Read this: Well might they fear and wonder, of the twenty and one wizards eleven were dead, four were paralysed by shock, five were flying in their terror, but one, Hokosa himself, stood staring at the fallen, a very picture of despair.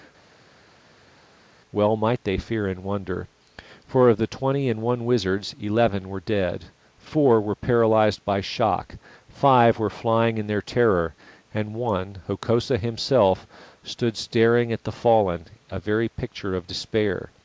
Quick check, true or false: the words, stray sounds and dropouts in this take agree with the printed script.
false